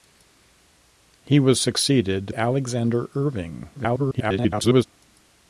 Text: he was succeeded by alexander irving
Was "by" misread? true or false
true